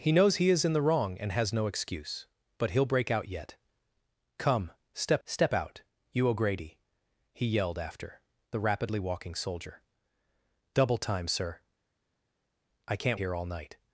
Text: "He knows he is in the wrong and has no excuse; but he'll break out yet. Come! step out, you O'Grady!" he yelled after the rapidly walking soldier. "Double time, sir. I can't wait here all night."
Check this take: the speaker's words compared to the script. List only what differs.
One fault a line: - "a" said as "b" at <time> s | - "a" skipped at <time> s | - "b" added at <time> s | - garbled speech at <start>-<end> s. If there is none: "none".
- "step" added at 5.3 s
- "wait" skipped at 13.2 s